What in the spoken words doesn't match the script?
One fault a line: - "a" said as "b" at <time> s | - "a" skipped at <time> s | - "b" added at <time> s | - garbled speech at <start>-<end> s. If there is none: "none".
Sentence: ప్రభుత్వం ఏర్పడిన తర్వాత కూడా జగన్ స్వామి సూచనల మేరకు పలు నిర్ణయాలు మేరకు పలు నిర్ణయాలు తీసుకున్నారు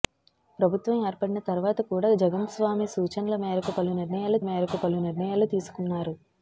none